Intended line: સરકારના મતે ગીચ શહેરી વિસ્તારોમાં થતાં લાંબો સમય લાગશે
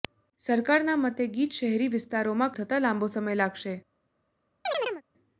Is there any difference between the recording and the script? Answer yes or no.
no